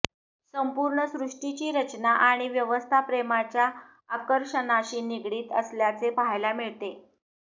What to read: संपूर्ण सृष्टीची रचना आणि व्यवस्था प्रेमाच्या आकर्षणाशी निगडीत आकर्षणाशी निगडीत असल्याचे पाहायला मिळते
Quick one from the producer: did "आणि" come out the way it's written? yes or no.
yes